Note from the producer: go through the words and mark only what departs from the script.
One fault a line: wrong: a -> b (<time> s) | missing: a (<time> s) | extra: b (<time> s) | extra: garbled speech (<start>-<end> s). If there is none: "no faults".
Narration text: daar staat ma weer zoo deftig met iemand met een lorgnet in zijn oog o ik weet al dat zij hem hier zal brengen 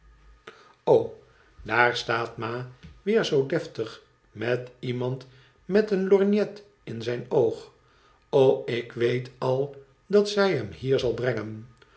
no faults